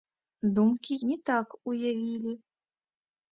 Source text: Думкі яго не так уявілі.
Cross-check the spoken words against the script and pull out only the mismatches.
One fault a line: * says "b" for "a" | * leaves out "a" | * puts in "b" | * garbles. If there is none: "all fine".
* leaves out "яго"